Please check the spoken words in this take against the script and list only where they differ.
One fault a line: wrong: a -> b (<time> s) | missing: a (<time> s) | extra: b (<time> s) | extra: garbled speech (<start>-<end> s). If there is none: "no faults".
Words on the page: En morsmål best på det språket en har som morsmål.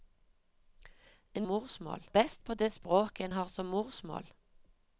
no faults